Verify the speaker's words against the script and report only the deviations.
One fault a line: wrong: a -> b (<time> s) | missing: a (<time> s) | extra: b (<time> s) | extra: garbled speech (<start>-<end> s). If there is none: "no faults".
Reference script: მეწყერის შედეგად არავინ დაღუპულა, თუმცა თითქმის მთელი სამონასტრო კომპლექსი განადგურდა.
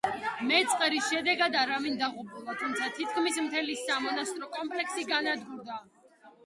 no faults